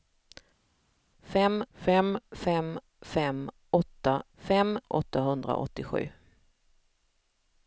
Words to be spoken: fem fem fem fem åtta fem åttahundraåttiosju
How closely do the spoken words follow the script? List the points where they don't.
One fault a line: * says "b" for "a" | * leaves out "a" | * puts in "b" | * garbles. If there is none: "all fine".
all fine